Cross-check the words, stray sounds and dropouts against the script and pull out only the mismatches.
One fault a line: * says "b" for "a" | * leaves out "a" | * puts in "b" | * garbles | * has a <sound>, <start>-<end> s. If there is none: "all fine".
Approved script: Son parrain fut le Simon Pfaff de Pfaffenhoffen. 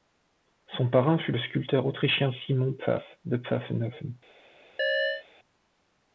* puts in "sculpteur autrichien"
* has a chirp, 4.8-5.3 s